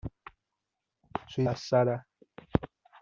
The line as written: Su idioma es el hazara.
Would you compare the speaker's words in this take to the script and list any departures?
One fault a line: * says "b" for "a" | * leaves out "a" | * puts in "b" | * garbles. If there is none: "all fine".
* leaves out "idioma es el"